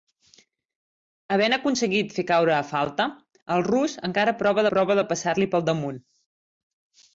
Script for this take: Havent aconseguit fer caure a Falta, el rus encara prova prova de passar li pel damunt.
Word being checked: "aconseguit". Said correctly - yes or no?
yes